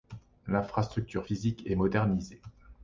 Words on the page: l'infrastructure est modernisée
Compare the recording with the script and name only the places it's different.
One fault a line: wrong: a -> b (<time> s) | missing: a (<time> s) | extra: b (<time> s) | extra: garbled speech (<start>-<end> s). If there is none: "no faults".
extra: physique (1.2 s)